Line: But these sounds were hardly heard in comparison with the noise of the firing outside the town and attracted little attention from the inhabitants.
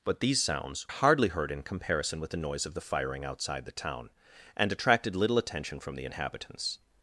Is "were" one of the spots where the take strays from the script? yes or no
yes